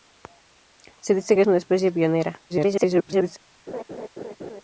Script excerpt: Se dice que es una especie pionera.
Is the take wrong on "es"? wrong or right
wrong